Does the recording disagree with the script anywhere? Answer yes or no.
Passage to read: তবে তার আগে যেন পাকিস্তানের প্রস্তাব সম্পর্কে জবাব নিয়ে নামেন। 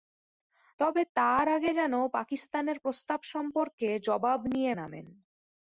no